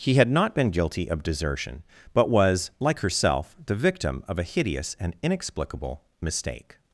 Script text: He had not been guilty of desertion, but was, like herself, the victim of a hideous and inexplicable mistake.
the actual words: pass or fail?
pass